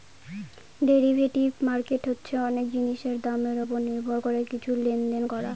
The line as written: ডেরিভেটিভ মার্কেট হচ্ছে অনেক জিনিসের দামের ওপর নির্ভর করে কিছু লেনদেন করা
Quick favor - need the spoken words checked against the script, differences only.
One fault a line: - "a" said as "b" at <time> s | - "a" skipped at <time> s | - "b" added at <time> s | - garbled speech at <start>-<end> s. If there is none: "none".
none